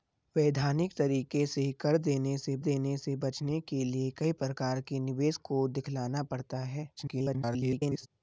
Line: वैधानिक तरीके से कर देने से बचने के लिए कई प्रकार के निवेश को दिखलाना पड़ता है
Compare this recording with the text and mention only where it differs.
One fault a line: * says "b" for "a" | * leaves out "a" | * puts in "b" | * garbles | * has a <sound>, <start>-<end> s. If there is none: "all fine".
* puts in "देने से"
* garbles